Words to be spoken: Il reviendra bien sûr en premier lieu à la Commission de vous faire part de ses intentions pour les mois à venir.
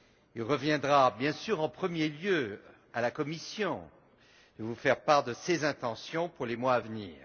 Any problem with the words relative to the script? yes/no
no